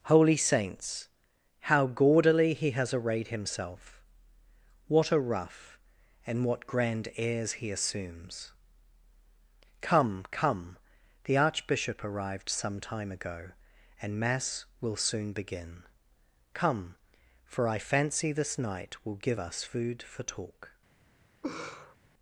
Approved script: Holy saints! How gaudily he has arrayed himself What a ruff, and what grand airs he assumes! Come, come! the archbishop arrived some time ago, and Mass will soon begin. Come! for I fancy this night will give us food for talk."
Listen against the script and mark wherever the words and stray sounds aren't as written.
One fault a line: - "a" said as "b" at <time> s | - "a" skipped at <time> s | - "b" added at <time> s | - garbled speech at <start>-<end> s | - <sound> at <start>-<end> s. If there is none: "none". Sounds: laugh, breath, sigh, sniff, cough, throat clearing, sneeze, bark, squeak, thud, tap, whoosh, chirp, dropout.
- laugh at 21.4-22.0 s